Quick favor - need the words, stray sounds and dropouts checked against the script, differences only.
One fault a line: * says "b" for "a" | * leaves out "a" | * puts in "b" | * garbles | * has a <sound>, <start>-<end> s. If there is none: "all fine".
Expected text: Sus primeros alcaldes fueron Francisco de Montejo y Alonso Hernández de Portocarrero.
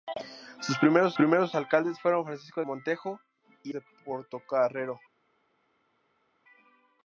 * puts in "primeros"
* leaves out "de"
* leaves out "Alonso Hernández"